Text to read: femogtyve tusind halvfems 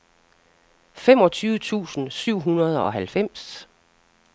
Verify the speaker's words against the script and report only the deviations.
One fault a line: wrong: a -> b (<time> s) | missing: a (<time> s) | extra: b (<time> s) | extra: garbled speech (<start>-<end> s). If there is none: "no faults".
extra: syv hundrede og (2.1 s)